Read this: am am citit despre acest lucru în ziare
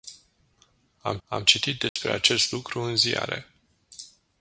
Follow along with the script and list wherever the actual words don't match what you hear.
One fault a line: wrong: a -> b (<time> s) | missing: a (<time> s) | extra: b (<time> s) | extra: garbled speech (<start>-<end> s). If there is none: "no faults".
no faults